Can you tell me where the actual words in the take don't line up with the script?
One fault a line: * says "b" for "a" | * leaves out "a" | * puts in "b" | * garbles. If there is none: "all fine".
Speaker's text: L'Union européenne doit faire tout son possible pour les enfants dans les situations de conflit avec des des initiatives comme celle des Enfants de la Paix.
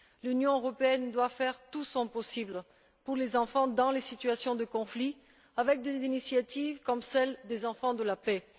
* leaves out "des"